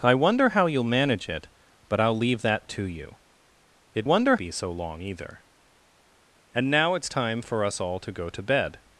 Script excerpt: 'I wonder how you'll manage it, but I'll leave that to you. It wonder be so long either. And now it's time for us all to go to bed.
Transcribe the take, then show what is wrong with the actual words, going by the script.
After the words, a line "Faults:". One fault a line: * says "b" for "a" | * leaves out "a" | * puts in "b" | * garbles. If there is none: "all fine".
'I wonder how you'll manage it, but I'll leave that to you. It wonder be so long either. And now it's time for us all to go to bed.
Faults:
all fine